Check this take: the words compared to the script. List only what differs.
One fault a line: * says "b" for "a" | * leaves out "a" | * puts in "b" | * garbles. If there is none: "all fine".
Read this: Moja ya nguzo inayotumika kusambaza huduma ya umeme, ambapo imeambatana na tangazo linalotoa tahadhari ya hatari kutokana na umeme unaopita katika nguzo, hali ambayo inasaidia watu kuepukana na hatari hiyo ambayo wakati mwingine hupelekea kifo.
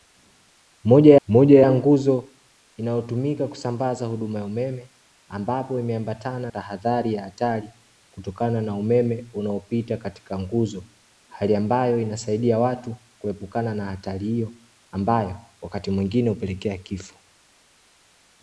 * puts in "moja"
* leaves out "na tangazo linalotoa"